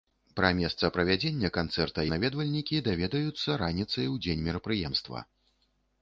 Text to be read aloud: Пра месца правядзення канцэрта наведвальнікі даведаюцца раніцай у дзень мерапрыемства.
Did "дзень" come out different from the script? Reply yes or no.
no